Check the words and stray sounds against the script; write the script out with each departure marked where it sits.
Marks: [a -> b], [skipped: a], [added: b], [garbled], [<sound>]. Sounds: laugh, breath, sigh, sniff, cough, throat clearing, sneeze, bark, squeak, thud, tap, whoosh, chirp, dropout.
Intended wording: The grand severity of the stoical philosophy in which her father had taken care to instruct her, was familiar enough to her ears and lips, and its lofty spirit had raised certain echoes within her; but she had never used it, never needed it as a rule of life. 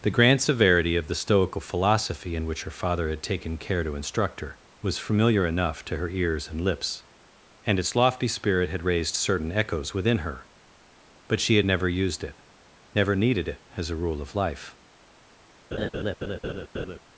The grand severity of the stoical philosophy in which her father had taken care to instruct her, was familiar enough to her ears and lips, and its lofty spirit had raised certain echoes within her; but she had never used it, never needed it as a rule of life. [laugh]